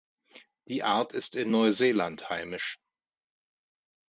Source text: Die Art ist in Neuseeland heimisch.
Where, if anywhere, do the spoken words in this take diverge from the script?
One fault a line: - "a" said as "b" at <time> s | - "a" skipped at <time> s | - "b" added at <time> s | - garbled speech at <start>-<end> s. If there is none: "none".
none